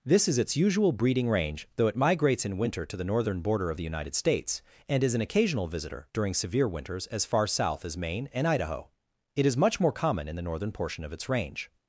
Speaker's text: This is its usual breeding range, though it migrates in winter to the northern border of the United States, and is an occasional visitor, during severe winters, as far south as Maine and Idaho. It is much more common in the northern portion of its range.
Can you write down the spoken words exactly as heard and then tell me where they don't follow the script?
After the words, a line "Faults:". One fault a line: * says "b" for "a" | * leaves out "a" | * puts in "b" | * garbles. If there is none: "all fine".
This is its usual breeding range, though it migrates in winter to the northern border of the United States, and is an occasional visitor, during severe winters, as far south as Maine and Idaho. It is much more common in the northern portion of its range.
Faults:
all fine